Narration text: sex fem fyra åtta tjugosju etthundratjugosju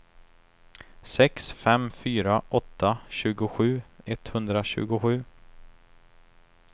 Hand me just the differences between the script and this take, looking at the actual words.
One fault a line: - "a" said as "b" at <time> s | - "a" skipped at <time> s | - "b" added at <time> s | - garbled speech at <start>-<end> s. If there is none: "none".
none